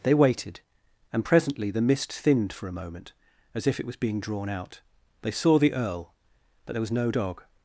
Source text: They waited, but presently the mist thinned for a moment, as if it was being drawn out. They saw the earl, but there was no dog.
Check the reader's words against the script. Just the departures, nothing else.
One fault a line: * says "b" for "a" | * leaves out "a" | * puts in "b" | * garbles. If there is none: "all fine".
* says "and" for "but"